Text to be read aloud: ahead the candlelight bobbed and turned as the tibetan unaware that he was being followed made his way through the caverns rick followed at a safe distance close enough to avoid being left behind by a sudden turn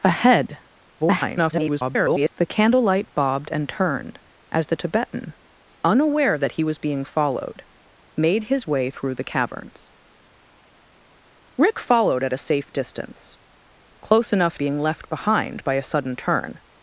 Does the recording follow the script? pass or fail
fail